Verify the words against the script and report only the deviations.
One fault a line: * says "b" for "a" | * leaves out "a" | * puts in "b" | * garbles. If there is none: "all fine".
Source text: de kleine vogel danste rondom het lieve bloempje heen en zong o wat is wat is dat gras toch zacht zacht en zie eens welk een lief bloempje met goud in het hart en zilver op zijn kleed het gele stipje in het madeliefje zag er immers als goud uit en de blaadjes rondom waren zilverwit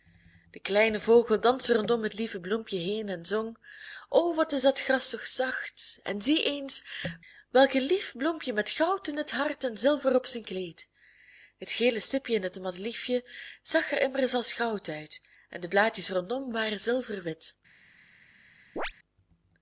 * leaves out "wat is"
* leaves out "zacht"